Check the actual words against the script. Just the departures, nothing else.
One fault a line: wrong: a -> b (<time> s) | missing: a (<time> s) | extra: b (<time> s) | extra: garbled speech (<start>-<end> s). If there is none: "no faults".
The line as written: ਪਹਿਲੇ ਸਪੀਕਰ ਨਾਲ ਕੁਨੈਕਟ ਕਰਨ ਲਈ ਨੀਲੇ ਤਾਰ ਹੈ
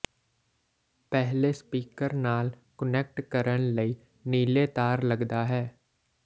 extra: ਲੱਗਦਾ (5.0 s)